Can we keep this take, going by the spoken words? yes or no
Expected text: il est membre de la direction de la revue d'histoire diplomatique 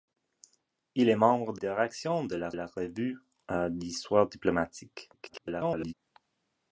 no